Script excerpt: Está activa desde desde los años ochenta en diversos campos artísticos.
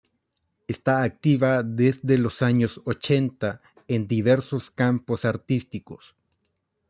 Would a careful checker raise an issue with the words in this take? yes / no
yes